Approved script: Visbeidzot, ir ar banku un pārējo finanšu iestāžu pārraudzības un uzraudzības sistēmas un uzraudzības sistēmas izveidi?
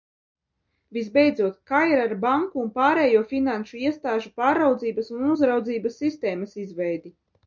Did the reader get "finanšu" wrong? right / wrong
right